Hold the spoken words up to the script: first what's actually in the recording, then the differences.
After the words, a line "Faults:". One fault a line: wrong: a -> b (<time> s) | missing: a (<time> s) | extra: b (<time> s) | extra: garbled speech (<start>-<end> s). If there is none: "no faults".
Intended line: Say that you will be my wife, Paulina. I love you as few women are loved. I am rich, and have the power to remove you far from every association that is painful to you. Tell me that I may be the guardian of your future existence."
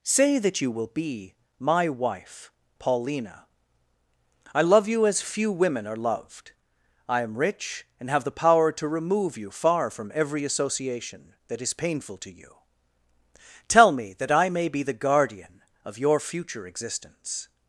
Say that you will be my wife, Paulina. I love you as few women are loved. I am rich, and have the power to remove you far from every association that is painful to you. Tell me that I may be the guardian of your future existence."
Faults:
no faults